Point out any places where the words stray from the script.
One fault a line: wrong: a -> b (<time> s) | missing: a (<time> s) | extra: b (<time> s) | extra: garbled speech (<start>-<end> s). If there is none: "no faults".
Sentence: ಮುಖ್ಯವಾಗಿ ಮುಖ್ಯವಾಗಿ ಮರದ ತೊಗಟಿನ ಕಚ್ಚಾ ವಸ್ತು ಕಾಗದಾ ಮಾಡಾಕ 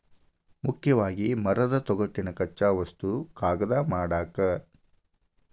missing: ಮುಖ್ಯವಾಗಿ (1.3 s)